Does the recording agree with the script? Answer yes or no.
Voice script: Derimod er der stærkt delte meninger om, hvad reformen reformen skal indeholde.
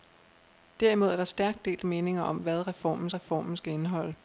yes